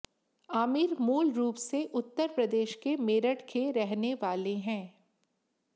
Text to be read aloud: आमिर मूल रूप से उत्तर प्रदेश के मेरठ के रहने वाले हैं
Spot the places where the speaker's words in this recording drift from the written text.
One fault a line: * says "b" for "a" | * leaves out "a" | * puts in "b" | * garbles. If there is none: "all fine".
all fine